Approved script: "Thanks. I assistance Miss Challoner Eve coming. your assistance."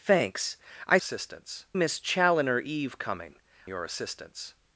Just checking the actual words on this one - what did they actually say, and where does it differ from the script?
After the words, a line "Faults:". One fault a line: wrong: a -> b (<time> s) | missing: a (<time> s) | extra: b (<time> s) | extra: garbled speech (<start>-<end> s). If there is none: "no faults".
"Thanks. I assistance Miss Challoner Eve coming. your assistance."
Faults:
no faults